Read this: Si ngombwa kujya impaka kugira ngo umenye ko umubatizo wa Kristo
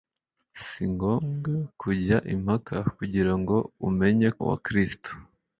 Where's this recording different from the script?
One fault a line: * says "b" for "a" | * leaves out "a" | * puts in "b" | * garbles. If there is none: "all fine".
* leaves out "ko umubatizo"